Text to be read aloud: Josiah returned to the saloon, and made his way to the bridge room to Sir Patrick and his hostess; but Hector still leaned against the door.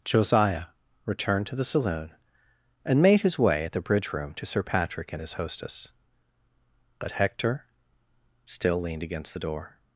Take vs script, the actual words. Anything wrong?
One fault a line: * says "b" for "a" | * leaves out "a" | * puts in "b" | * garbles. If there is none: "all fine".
* says "at" for "to"